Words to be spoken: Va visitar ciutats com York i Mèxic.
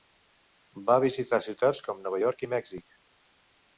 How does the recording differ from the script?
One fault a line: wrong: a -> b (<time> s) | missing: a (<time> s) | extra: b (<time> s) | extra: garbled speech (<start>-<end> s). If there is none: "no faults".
extra: Nova (2.1 s)